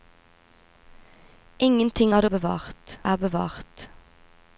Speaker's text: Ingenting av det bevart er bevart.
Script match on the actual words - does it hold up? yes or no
yes